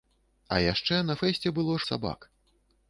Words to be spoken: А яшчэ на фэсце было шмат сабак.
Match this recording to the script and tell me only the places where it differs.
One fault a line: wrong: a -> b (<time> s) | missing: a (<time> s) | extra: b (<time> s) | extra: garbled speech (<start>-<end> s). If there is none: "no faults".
missing: шмат (1.7 s)